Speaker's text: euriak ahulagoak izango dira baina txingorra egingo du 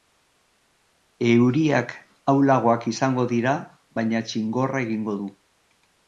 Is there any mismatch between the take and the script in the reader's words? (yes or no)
no